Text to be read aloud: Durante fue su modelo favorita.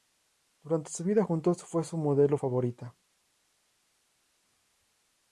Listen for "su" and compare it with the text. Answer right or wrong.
right